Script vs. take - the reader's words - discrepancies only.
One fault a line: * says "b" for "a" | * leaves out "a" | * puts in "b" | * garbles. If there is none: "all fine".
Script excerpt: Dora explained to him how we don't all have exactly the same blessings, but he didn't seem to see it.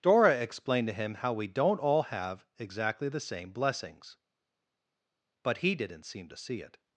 all fine